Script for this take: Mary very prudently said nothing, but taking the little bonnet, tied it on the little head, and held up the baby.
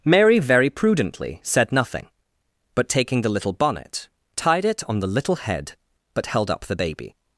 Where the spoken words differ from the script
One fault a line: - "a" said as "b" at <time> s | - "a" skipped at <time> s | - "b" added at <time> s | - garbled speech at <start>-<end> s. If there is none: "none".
- "and" said as "but" at 6.1 s